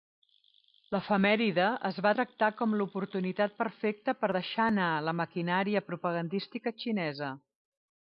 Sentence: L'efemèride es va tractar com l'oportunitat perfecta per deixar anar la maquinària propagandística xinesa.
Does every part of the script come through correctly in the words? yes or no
yes